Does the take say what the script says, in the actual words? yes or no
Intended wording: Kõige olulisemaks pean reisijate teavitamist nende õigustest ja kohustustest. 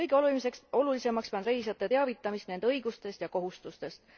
yes